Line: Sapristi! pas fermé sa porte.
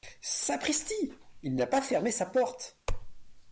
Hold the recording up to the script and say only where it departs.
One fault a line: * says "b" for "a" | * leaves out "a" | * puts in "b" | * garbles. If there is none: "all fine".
* puts in "il n'a"